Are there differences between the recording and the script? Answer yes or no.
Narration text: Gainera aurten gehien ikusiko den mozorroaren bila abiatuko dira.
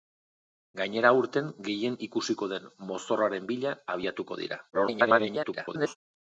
yes